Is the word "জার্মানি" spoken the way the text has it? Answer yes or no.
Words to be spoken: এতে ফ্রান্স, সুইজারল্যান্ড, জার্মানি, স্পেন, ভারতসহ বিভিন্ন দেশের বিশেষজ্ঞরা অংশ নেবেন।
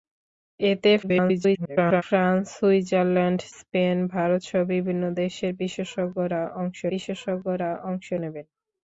no